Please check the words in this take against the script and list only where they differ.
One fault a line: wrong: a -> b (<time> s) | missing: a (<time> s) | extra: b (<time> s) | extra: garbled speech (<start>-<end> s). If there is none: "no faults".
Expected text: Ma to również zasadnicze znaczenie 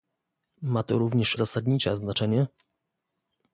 no faults